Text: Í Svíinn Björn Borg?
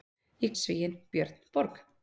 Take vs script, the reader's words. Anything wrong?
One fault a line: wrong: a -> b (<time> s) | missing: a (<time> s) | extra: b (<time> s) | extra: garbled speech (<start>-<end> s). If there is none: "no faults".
no faults